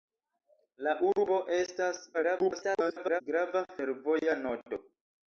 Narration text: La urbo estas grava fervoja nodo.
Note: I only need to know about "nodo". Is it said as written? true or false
true